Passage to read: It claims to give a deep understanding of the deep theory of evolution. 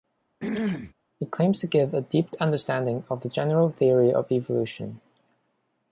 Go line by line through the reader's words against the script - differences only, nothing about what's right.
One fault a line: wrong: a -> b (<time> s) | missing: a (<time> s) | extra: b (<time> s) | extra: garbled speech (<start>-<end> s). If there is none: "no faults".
wrong: deep -> general (3.3 s)